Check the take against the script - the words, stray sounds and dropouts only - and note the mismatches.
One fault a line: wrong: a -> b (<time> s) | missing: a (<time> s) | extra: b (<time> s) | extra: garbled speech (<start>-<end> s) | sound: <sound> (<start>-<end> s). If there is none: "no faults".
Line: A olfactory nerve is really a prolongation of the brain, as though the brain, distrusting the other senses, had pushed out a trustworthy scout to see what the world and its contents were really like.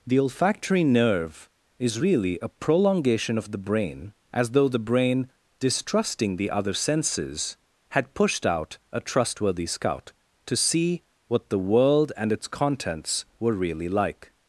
wrong: A -> The (0.1 s)